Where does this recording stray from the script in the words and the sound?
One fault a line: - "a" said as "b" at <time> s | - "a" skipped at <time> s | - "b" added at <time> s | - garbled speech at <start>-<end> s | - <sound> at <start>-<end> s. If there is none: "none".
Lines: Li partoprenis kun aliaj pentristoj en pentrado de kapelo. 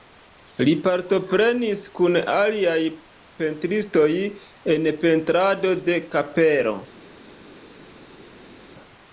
none